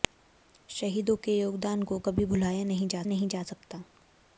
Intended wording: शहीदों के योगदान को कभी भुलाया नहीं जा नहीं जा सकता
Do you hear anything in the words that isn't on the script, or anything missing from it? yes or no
no